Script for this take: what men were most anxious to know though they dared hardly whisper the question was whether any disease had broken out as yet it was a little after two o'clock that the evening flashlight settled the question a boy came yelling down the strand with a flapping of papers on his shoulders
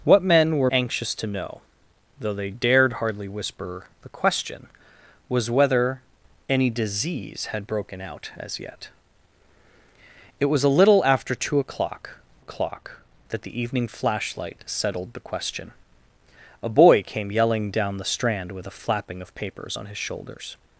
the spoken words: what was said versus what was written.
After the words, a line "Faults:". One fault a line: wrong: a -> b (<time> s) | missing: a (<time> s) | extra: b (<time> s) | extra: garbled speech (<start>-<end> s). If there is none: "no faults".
what men were anxious to know though they dared hardly whisper the question was whether any disease had broken out as yet it was a little after two o'clock o'clock that the evening flashlight settled the question a boy came yelling down the strand with a flapping of papers on his shoulders
Faults:
missing: most (0.7 s)
extra: o'clock (12.4 s)